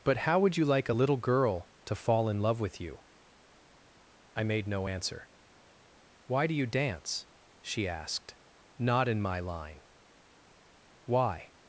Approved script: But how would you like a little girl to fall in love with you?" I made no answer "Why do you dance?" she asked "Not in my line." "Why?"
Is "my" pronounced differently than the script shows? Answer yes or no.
no